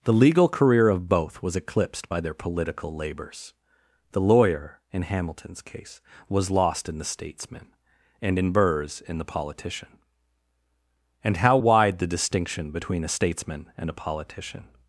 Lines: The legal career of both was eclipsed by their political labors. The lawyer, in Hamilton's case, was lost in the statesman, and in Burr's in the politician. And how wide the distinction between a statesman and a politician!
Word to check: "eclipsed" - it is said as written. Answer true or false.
true